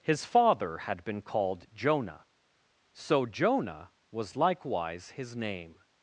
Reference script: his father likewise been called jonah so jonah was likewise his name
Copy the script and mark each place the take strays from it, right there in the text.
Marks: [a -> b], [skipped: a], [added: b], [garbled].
his father [likewise -> had] been called jonah so jonah was likewise his name